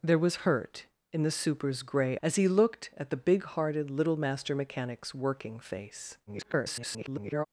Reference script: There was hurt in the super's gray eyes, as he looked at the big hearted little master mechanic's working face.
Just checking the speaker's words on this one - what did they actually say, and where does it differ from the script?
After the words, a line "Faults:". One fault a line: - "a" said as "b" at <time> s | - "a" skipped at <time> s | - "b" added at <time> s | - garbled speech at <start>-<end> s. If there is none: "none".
There was hurt in the super's gray as he looked at the big hearted little master mechanic's working face. [garbled]
Faults:
- "eyes" skipped at 2.2 s
- garbled speech at 6.3-7.5 s